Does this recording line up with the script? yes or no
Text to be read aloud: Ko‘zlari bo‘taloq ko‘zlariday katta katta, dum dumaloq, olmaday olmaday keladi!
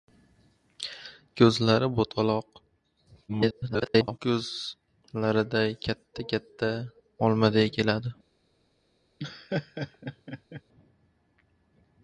no